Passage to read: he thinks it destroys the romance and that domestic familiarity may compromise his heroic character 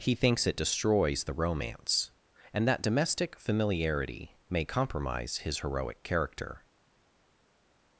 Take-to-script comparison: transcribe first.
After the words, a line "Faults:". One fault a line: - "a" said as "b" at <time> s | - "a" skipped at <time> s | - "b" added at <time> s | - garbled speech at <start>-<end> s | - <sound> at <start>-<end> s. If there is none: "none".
he thinks it destroys the romance and that domestic familiarity may compromise his heroic character
Faults:
none